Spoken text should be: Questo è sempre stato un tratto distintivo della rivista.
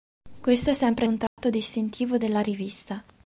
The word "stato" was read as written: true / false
false